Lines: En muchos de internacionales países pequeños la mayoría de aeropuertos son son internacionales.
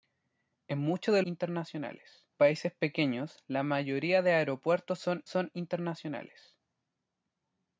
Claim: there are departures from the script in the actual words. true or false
false